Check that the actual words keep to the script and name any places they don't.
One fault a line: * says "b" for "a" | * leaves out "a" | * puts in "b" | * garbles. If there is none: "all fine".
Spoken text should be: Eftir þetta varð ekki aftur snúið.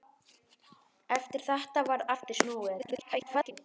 * leaves out "ekki"
* garbles